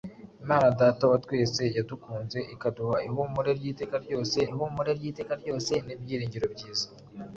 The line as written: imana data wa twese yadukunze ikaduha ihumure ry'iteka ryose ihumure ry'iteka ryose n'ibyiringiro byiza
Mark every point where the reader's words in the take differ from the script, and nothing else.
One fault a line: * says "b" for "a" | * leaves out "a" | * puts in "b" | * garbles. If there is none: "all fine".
all fine